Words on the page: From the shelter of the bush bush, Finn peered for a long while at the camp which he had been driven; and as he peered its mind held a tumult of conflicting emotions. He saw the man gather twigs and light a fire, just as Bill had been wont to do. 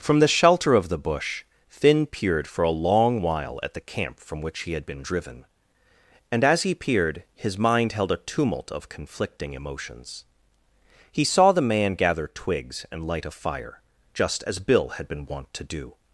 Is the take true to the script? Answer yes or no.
no